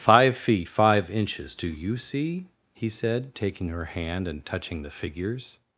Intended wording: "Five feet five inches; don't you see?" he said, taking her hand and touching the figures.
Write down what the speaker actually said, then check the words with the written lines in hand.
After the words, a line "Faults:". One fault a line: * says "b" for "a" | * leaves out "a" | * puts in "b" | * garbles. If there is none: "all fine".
"Five feet five inches; do you see?" he said, taking her hand and touching the figures.
Faults:
* says "do" for "don't"